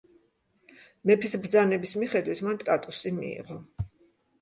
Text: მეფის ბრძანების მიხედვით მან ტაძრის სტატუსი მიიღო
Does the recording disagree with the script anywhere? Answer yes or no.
yes